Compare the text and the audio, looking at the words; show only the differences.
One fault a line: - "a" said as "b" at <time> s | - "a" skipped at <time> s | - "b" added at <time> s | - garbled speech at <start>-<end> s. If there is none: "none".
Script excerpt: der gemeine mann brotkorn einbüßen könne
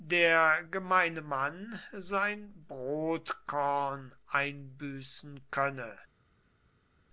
- "sein" added at 1.9 s